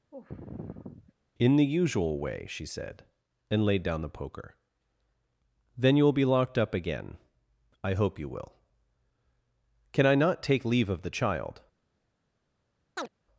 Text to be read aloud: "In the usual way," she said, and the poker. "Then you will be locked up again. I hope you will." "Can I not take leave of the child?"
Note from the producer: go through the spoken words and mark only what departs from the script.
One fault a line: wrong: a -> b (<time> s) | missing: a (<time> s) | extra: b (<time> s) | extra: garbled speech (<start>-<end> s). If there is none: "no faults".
extra: laid down (3.6 s)